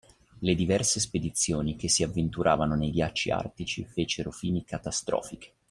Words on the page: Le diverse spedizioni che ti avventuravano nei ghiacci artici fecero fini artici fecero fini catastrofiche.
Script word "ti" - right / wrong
wrong